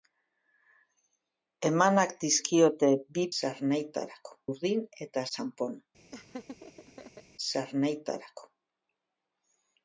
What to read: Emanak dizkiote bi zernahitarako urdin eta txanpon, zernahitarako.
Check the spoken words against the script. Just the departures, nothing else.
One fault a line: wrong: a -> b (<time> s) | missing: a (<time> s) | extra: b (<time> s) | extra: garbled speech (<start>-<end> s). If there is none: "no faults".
no faults